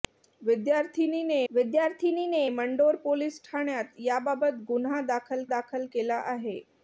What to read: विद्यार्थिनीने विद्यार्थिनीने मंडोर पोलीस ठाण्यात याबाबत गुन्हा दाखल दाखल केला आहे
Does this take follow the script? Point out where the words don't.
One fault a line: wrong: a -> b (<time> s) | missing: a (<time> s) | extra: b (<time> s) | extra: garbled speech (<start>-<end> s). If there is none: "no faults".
no faults